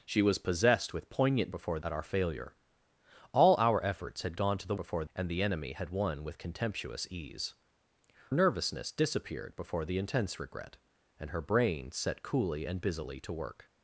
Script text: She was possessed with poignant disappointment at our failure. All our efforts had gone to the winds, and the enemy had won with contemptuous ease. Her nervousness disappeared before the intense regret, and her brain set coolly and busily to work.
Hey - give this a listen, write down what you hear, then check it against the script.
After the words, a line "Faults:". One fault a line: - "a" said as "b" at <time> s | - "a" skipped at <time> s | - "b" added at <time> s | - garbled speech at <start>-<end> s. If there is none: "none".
She was possessed with poignant before at our failure. All our efforts had gone to the before, and the enemy had won with contemptuous ease. Nervousness disappeared before the intense regret, and her brain set coolly and busily to work.
Faults:
- "disappointment" said as "before" at 1.5 s
- "winds" said as "before" at 4.7 s
- "Her" skipped at 7.5 s